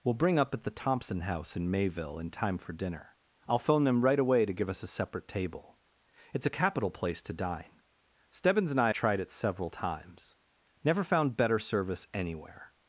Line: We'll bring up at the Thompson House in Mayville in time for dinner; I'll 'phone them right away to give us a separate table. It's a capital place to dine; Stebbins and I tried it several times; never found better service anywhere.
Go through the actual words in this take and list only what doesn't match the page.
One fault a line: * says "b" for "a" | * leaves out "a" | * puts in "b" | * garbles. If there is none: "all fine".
all fine